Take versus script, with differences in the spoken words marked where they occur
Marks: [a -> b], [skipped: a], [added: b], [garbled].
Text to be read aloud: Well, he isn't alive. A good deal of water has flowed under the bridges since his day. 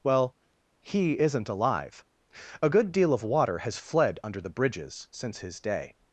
Well, he isn't alive. A good deal of water has [flowed -> fled] under the bridges since his day.